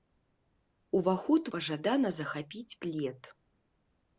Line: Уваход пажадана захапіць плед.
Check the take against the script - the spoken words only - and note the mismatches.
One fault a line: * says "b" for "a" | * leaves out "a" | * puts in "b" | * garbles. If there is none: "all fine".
all fine